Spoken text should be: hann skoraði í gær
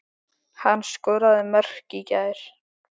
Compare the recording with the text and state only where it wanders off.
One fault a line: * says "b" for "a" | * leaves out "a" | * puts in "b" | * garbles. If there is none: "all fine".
* puts in "mörk"